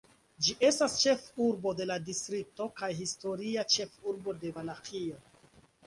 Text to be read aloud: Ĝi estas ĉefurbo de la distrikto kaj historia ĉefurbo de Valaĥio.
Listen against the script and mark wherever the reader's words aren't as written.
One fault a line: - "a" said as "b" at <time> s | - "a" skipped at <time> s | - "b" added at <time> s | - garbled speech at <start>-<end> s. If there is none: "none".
none